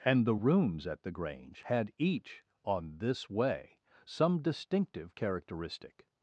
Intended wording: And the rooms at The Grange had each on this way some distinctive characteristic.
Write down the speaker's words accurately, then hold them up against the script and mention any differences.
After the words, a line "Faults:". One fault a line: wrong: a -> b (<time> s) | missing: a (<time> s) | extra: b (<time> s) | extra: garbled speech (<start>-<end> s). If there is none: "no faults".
And the rooms at The Grange had each on this way some distinctive characteristic.
Faults:
no faults